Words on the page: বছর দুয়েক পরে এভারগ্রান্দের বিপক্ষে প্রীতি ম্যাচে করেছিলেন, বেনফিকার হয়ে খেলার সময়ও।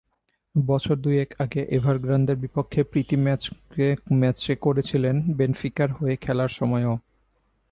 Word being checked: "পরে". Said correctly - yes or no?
no